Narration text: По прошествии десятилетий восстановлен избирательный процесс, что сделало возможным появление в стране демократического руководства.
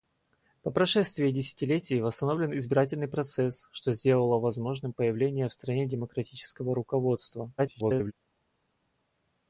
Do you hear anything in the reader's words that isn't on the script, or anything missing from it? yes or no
yes